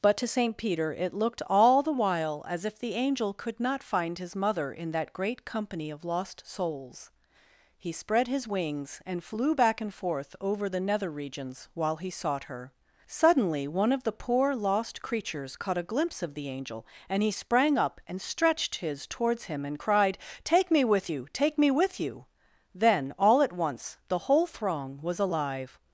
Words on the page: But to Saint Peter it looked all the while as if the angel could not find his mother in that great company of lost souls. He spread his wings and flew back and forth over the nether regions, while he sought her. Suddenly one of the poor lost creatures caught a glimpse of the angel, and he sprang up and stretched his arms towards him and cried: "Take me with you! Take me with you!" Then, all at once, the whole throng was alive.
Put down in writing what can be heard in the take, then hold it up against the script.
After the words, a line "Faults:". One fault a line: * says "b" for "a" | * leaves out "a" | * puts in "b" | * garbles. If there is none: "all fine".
But to Saint Peter it looked all the while as if the angel could not find his mother in that great company of lost souls. He spread his wings and flew back and forth over the nether regions, while he sought her. Suddenly one of the poor lost creatures caught a glimpse of the angel, and he sprang up and stretched his towards him and cried: "Take me with you! Take me with you!" Then, all at once, the whole throng was alive.
Faults:
* leaves out "arms"